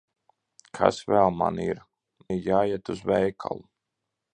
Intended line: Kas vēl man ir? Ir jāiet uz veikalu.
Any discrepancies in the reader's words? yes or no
no